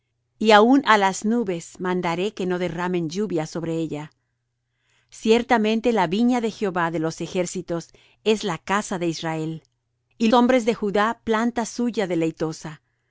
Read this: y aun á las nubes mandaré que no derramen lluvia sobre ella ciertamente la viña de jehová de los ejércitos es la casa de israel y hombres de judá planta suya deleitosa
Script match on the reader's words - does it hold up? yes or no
yes